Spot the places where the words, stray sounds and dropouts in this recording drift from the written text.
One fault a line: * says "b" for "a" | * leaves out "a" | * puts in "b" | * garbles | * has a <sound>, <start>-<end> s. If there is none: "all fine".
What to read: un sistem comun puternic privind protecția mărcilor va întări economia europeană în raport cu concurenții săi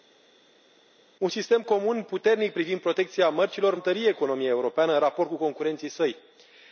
* leaves out "va"